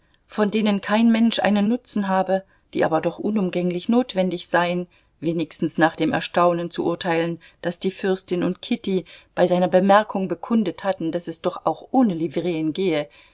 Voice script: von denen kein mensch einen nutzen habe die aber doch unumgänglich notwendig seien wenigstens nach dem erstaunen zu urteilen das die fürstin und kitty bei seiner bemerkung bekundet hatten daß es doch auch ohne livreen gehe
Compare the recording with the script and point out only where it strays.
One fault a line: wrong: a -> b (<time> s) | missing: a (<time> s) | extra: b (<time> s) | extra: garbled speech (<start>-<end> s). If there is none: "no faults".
no faults